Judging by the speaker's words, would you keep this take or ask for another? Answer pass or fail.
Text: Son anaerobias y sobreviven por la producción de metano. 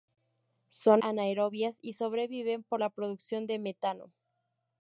pass